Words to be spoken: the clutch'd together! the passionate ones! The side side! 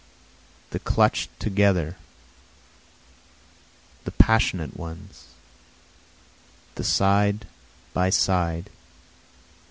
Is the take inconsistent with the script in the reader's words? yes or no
yes